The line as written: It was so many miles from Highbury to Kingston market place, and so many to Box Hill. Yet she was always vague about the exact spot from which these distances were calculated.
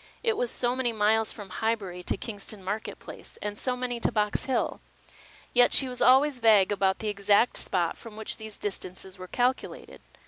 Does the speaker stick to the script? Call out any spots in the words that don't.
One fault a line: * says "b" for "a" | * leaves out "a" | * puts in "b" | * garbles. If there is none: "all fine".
all fine